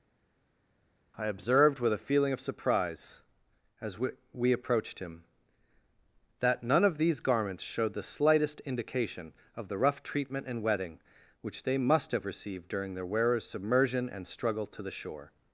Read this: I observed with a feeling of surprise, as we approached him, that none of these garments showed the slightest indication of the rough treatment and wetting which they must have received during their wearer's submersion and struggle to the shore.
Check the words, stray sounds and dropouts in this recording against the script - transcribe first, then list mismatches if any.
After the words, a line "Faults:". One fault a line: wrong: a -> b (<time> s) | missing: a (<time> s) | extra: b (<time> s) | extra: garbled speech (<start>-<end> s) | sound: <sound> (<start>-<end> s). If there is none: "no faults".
I observed with a feeling of surprise, as we we approached him, that none of these garments showed the slightest indication of the rough treatment and wetting which they must have received during their wearer's submersion and struggle to the shore.
Faults:
extra: we (4.3 s)